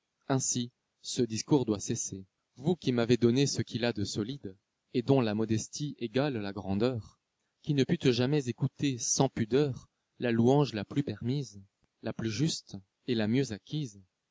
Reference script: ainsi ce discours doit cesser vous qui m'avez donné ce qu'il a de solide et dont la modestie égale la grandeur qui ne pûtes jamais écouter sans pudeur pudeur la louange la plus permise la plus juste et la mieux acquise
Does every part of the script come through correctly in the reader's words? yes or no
no